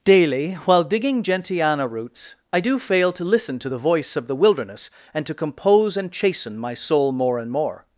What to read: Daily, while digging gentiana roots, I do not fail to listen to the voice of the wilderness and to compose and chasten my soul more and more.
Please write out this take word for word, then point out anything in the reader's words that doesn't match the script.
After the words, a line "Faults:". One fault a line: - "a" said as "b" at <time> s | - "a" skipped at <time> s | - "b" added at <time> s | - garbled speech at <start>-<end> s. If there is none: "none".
Daily, while digging gentiana roots, I do fail to listen to the voice of the wilderness and to compose and chasten my soul more and more.
Faults:
- "not" skipped at 2.8 s